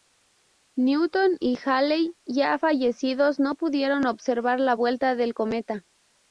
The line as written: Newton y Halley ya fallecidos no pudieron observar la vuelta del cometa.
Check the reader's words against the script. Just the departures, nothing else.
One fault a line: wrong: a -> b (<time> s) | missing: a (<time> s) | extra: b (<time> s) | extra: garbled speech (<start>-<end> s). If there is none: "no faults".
no faults